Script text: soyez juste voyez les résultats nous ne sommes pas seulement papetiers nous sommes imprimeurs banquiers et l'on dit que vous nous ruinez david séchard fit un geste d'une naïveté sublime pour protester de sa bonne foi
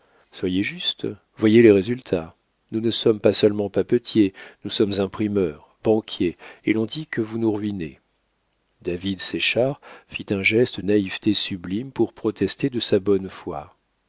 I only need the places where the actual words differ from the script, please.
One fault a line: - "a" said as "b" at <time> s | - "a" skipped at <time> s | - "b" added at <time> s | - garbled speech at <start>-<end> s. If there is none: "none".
- "d'une" skipped at 10.8 s